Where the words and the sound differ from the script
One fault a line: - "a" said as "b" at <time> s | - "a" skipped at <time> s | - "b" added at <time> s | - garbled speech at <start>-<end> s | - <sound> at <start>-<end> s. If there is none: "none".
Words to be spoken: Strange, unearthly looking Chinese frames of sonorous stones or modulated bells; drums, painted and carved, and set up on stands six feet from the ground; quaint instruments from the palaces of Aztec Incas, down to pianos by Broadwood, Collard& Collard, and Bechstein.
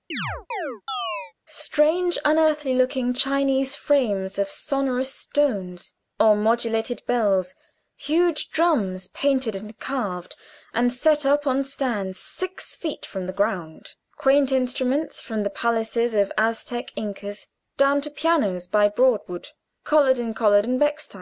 - chirp at 0.1-1.3 s
- "huge" added at 8.0 s